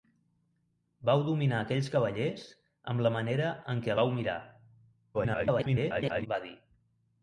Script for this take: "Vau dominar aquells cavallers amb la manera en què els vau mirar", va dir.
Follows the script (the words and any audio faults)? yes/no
no